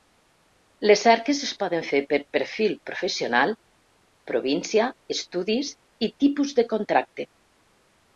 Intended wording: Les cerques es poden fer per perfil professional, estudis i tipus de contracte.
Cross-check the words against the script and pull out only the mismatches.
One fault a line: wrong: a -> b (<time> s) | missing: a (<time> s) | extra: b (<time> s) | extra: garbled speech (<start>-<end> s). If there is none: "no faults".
extra: província (4.3 s)